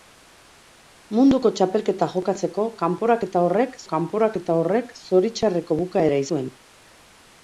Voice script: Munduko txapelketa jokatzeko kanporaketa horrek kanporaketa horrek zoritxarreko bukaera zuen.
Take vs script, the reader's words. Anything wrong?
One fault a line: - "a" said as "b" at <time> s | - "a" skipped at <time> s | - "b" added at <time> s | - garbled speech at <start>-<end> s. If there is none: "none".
none